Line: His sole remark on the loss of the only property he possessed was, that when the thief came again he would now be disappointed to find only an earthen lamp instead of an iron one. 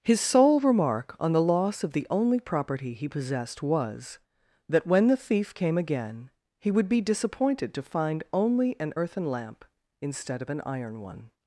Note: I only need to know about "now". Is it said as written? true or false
false